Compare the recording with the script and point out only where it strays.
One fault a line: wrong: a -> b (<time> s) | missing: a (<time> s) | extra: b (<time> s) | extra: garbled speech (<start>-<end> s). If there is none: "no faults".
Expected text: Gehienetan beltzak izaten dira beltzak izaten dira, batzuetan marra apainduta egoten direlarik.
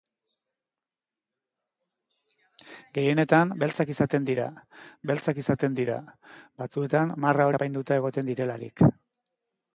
no faults